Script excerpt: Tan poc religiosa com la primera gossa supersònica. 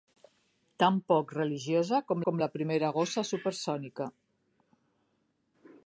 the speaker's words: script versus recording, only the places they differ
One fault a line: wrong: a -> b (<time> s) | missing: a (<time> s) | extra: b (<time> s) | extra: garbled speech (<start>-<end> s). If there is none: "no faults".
extra: com (2.3 s)